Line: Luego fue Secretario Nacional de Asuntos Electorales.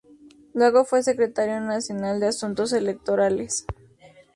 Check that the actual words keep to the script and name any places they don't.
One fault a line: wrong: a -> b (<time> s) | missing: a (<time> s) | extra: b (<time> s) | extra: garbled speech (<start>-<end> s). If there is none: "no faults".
no faults